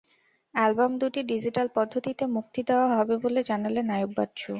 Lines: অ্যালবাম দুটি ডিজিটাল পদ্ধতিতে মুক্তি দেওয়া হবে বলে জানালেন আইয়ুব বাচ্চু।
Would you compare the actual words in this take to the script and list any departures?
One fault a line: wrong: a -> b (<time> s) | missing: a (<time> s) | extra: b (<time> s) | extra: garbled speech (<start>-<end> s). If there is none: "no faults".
no faults